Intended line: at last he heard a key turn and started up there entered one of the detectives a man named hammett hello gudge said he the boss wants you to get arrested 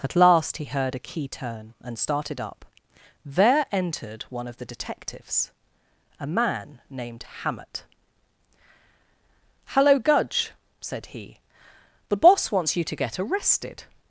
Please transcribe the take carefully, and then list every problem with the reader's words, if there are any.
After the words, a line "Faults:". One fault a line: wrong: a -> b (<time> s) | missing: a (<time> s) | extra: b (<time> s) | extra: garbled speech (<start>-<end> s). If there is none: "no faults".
at last he heard a key turn and started up there entered one of the detectives a man named hammett hello gudge said he the boss wants you to get arrested
Faults:
no faults